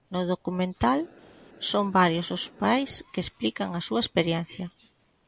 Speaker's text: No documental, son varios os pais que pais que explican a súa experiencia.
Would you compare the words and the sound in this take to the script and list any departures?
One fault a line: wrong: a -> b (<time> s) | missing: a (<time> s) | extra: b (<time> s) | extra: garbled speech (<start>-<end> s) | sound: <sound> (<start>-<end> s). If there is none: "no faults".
missing: pais que (3.2 s)